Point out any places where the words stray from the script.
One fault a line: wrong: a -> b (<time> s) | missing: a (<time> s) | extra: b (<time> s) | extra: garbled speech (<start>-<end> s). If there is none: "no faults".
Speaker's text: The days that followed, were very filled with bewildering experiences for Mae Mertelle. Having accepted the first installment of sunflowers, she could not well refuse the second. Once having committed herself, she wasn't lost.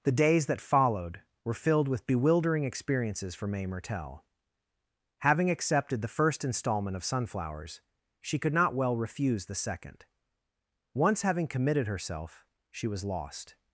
missing: very (1.5 s)
wrong: wasn't -> was (12.9 s)